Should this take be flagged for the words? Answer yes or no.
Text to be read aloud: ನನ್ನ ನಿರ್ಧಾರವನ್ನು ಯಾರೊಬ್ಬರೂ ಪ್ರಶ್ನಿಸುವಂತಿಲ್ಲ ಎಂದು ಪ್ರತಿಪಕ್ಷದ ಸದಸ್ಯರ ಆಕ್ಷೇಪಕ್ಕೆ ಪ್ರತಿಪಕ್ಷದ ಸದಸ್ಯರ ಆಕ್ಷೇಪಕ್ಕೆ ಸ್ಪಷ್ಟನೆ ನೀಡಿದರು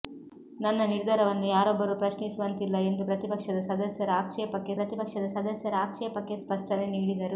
no